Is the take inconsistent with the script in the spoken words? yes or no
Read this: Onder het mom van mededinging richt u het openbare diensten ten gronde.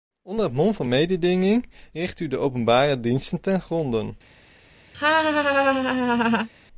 yes